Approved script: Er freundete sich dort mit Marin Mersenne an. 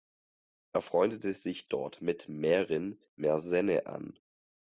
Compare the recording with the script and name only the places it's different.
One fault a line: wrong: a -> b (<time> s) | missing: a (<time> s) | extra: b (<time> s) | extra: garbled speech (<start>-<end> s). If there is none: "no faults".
no faults